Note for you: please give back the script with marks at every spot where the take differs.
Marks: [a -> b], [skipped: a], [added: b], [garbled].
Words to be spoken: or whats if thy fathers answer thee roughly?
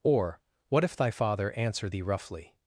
or [whats -> what] if thy [fathers -> father] answer thee roughly?